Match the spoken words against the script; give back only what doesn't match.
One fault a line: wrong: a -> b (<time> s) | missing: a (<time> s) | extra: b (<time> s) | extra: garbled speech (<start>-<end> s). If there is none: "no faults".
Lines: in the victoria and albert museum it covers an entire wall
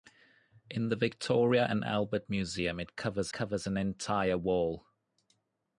extra: covers (3.3 s)